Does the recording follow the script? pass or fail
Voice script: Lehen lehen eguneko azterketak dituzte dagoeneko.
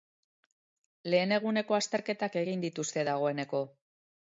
fail